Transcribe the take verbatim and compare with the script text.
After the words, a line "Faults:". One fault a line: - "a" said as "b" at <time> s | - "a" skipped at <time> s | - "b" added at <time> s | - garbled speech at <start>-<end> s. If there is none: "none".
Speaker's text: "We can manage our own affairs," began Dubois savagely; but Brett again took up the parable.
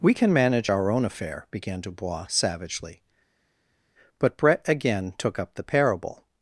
"We can manage our own affair," began Dubois savagely; but Brett again took up the parable.
Faults:
- "affairs" said as "affair" at 1.0 s